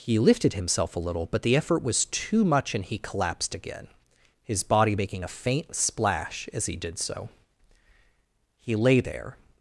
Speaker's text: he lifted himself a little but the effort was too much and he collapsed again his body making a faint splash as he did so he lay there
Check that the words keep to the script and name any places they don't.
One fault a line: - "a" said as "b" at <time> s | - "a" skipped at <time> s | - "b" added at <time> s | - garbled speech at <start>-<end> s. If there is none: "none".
none